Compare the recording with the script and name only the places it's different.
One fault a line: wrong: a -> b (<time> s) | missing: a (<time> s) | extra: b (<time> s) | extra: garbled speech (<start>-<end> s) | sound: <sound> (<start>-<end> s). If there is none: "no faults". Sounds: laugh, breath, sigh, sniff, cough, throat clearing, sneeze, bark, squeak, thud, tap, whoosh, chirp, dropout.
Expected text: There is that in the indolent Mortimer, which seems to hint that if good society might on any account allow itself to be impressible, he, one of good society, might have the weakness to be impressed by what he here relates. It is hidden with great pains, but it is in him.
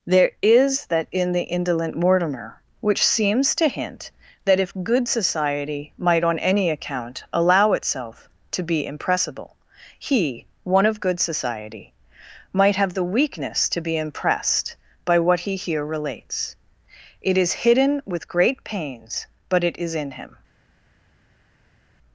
no faults